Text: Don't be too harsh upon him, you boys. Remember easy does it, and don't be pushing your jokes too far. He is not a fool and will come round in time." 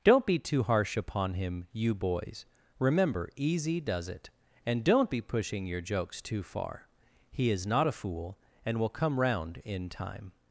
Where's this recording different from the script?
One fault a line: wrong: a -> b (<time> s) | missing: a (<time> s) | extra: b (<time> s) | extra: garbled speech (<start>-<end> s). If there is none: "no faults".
no faults